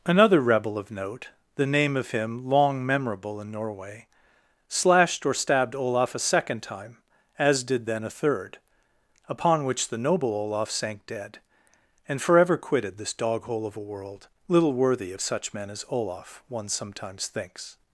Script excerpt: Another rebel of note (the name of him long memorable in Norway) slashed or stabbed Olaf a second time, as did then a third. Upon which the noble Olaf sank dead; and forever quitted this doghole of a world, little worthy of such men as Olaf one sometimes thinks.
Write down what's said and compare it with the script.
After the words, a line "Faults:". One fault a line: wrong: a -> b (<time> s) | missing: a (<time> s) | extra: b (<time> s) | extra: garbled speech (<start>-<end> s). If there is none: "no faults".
Another rebel of note (the name of him long memorable in Norway) slashed or stabbed Olaf a second time, as did then a third. Upon which the noble Olaf sank dead; and forever quitted this doghole of a world, little worthy of such men as Olaf one sometimes thinks.
Faults:
no faults